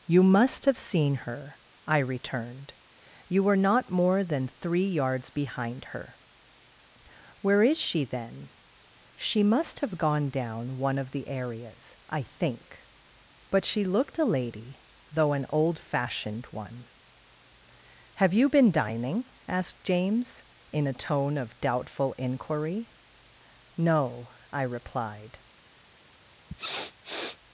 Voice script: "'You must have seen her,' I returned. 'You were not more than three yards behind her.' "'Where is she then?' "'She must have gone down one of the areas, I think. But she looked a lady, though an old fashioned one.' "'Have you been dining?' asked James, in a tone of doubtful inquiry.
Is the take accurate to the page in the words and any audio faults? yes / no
no